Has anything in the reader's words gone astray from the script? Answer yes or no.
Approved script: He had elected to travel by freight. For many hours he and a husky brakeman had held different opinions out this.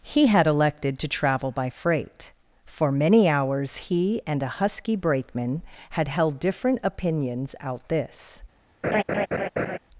no